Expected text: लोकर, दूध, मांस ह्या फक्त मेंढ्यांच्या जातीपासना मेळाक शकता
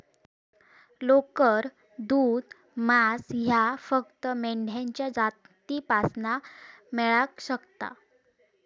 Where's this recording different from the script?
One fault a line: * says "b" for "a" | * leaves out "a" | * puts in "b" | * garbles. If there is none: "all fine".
all fine